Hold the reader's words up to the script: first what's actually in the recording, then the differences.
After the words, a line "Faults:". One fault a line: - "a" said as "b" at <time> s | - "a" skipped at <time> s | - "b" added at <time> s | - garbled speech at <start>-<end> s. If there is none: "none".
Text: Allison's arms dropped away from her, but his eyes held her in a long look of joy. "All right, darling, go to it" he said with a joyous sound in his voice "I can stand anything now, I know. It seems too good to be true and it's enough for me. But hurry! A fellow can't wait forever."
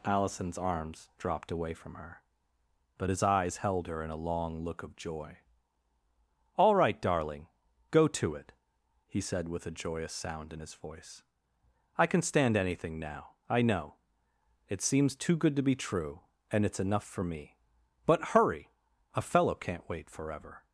Allison's arms dropped away from her, but his eyes held her in a long look of joy. "All right, darling, go to it" he said with a joyous sound in his voice "I can stand anything now, I know. It seems too good to be true and it's enough for me. But hurry! A fellow can't wait forever."
Faults:
none